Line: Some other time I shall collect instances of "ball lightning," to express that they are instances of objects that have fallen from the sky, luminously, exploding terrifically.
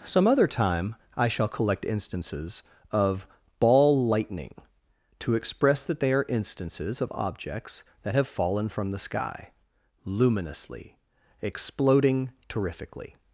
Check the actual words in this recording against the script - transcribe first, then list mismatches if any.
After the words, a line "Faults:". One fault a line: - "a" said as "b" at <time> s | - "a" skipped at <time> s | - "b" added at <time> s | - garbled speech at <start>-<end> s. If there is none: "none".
Some other time I shall collect instances of "ball lightning," to express that they are instances of objects that have fallen from the sky, luminously, exploding terrifically.
Faults:
none